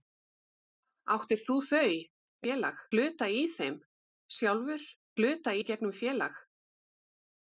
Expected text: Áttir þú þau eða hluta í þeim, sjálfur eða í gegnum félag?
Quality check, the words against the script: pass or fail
fail